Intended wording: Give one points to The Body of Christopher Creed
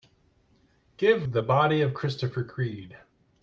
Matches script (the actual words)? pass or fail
fail